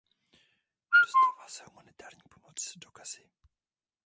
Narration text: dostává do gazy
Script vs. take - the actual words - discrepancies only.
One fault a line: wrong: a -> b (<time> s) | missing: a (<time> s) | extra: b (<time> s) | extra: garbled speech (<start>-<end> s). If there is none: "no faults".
extra: se humanitární pomoc (1.5 s)